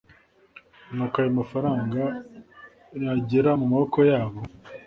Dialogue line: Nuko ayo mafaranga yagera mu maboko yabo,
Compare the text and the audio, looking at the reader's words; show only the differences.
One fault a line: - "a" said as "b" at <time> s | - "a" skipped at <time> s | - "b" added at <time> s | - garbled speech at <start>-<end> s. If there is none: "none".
none